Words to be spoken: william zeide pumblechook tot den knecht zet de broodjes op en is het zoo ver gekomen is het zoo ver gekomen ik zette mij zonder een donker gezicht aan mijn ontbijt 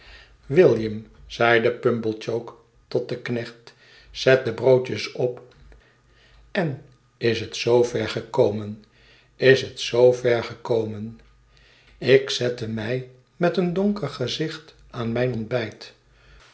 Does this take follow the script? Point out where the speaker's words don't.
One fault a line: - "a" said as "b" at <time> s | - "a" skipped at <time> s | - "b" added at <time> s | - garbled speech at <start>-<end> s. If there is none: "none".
- "zonder" said as "met" at 13.4 s